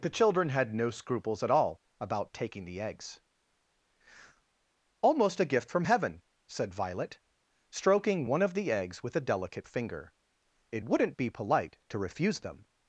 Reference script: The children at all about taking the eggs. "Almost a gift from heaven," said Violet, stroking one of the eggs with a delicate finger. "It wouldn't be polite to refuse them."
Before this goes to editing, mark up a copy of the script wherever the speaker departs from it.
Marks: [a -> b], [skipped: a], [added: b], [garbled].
The children [added: had no scruples] at all about taking the eggs. "Almost a gift from heaven," said Violet, stroking one of the eggs with a delicate finger. "It wouldn't be polite to refuse them."